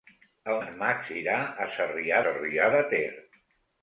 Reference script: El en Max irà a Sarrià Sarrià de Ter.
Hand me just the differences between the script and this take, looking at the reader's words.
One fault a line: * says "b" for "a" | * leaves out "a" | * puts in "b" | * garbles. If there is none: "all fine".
all fine